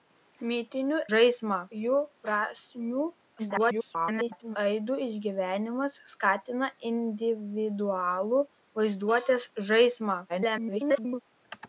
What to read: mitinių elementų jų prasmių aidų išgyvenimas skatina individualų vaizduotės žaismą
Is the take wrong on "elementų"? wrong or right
wrong